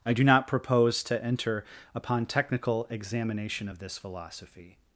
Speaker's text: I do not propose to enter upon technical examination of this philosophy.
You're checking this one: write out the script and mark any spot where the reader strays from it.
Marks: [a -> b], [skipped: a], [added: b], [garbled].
I do not propose to enter upon technical examination of this philosophy.